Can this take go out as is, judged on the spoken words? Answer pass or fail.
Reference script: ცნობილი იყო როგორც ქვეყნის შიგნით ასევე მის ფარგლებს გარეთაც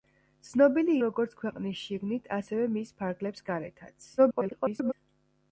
fail